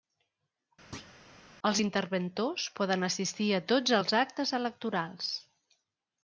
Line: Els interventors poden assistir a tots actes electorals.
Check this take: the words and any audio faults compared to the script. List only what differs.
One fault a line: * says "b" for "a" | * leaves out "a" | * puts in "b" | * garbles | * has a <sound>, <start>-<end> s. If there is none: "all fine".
* has a thud, 0.9-1.2 s
* puts in "els"